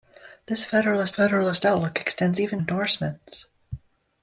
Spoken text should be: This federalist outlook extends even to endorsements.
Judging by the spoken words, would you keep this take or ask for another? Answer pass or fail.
fail